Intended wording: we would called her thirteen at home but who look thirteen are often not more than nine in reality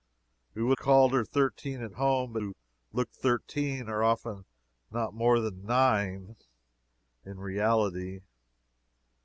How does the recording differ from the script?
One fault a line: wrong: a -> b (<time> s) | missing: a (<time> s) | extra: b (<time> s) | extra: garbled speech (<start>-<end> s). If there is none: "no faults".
no faults